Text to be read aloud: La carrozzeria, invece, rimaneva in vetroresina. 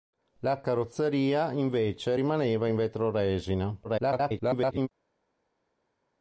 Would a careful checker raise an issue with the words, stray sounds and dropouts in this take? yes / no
yes